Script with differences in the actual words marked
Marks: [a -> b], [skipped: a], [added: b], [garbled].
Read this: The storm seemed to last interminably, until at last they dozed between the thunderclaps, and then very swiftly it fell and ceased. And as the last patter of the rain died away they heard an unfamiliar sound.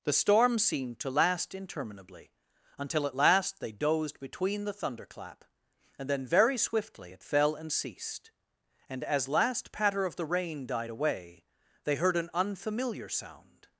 The storm seemed to last interminably, until at last they dozed between the [thunderclaps, -> thunderclap] and then very swiftly it fell and ceased. And as [skipped: the] last patter of the rain died away they heard an unfamiliar sound.